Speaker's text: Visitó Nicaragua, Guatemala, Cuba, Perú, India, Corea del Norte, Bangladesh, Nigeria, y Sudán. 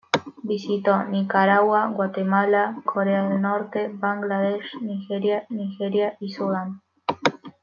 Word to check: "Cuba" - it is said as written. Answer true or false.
false